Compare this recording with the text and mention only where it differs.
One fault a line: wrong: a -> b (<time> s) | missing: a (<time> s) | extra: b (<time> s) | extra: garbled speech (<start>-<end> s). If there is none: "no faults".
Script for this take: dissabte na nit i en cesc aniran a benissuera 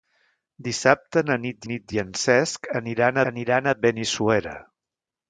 extra: nit (1.7 s)
extra: aniran (3.3 s)